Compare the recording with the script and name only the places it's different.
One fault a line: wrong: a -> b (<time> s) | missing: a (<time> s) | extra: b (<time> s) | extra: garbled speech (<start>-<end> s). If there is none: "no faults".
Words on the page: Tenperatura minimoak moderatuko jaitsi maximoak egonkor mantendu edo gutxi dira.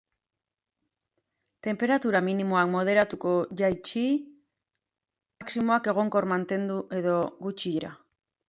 no faults